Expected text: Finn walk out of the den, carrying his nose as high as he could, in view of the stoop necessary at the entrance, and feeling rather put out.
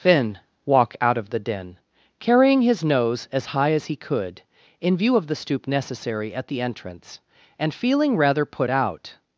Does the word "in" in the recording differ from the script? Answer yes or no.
no